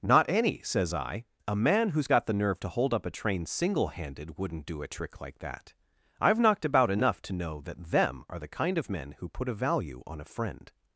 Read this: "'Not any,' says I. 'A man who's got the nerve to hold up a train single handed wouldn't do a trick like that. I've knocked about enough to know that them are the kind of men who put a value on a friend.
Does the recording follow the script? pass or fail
pass